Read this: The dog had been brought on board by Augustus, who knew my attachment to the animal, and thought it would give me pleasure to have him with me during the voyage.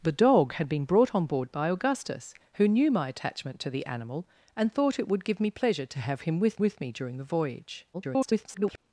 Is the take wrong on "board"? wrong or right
right